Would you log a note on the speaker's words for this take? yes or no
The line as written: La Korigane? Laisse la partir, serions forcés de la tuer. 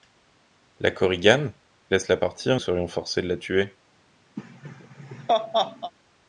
no